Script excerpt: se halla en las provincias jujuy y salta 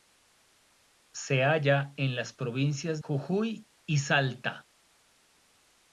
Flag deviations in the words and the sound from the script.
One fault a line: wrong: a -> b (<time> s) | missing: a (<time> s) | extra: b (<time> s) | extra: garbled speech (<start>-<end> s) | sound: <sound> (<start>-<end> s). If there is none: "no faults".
no faults